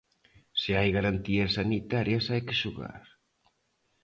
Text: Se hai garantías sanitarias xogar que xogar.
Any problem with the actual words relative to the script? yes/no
yes